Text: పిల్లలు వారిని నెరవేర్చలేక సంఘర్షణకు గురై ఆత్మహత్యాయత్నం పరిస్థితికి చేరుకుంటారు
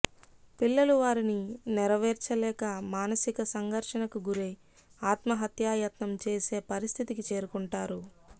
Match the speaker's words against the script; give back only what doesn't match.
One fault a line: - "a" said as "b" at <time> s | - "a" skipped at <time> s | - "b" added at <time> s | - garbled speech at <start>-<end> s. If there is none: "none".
- "మానసిక" added at 2.9 s
- "చేసే" added at 6.3 s